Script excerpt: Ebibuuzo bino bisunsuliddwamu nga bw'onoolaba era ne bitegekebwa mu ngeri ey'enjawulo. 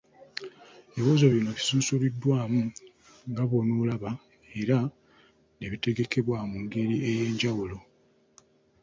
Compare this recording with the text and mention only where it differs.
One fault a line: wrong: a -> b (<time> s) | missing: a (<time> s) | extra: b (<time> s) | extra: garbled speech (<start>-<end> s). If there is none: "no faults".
no faults